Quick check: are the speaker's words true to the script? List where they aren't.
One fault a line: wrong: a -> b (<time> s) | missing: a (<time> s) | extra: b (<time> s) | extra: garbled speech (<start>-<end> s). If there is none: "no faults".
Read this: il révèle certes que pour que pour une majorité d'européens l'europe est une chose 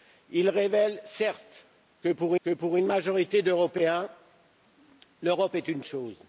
no faults